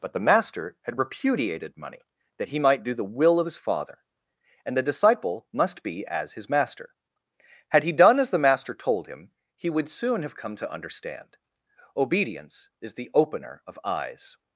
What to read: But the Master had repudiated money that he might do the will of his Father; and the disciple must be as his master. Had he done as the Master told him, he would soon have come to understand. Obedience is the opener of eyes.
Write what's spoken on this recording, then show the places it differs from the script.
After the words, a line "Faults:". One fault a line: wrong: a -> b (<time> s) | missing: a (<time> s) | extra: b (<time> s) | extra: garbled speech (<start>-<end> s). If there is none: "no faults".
But the Master had repudiated money that he might do the will of his Father; and the disciple must be as his master. Had he done as the Master told him, he would soon have come to understand. Obedience is the opener of eyes.
Faults:
no faults